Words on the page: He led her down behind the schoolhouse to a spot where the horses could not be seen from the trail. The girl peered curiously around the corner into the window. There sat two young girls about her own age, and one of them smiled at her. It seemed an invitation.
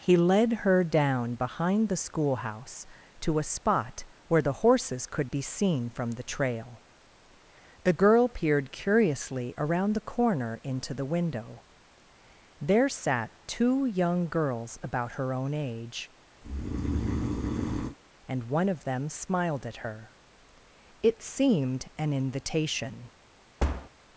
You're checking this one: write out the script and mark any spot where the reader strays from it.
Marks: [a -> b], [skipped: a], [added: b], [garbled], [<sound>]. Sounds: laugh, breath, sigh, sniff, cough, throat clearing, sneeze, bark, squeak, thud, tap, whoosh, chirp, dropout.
He led her down behind the schoolhouse to a spot where the horses could [skipped: not] be seen from the trail. The girl peered curiously around the corner into the window. There sat two young girls about her own age, [breath] and one of them smiled at her. It seemed an invitation. [thud]